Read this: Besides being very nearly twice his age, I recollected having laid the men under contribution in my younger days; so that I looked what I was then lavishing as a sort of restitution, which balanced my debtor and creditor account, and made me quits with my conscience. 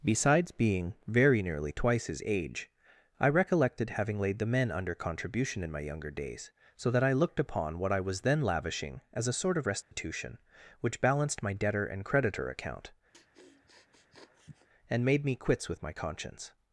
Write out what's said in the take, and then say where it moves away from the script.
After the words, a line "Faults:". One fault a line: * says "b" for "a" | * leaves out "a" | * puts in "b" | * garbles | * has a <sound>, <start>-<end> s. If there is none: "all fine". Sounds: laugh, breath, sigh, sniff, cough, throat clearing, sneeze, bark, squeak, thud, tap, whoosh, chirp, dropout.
Besides being very nearly twice his age, I recollected having laid the men under contribution in my younger days; so that I looked upon what I was then lavishing as a sort of restitution, which balanced my debtor and creditor account, and made me quits with my conscience.
Faults:
* puts in "upon"
* has a dropout, 9.8-9.9 s
* has a sniff, 13.1-14.7 s